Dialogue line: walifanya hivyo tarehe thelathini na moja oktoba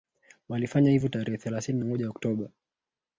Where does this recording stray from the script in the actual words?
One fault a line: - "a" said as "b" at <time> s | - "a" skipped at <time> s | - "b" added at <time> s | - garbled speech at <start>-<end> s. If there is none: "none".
- "na" skipped at 1.8 s